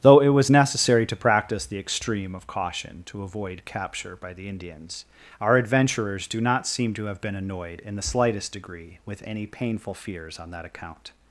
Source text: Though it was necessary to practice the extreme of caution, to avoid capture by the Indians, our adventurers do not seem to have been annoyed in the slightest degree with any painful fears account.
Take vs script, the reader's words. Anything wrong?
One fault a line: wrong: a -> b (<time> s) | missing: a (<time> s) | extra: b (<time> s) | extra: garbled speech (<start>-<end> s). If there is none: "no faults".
extra: on that (10.4 s)